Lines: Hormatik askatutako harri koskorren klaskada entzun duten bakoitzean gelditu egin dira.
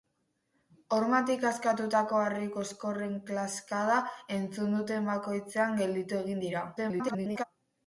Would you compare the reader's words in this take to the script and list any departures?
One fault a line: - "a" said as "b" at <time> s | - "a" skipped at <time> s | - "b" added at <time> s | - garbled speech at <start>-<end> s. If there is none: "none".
- garbled speech at 6.8-7.4 s